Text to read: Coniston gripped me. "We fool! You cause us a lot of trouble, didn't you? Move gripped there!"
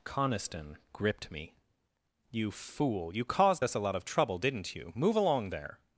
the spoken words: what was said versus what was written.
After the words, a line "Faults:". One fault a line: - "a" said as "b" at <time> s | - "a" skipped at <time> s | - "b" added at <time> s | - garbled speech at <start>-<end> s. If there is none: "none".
Coniston gripped me. "You fool! You caused us a lot of trouble, didn't you? Move along there!"
Faults:
- "We" said as "You" at 2.3 s
- "cause" said as "caused" at 3.2 s
- "gripped" said as "along" at 5.2 s